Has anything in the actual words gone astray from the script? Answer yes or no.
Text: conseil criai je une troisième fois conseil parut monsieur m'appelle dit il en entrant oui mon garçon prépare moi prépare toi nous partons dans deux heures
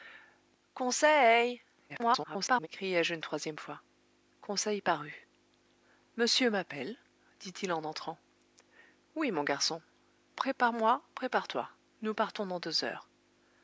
yes